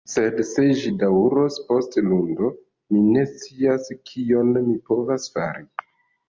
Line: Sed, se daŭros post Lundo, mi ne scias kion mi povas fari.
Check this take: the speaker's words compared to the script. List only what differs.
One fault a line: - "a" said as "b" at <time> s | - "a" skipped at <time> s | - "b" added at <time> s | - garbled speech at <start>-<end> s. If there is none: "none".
- "ĝi" added at 0.8 s